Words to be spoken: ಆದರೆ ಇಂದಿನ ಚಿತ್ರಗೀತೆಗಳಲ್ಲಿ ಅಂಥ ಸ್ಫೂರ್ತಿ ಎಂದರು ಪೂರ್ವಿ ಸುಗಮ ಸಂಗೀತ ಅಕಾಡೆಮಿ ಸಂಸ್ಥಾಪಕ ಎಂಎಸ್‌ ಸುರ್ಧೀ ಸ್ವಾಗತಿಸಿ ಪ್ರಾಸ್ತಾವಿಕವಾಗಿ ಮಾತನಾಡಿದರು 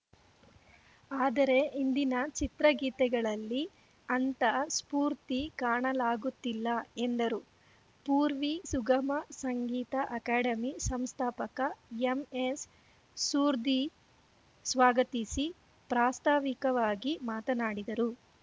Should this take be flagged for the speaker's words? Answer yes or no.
yes